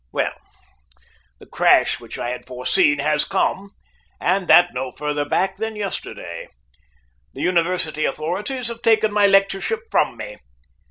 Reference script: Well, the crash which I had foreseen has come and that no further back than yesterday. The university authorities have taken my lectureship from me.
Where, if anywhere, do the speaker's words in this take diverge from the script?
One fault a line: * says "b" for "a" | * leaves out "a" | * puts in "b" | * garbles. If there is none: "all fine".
all fine